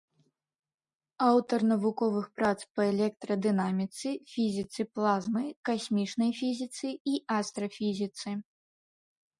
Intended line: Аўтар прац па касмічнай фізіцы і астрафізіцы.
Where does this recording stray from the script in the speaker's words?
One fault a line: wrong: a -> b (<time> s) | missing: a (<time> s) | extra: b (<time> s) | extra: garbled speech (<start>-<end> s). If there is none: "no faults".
extra: навуковых (1.7 s)
extra: электрадынаміцы фізіцы плазмы (2.9 s)